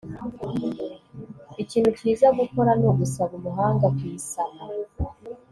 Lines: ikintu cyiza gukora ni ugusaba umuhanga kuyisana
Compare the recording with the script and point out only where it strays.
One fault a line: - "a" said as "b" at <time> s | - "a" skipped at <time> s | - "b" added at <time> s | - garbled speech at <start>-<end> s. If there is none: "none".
none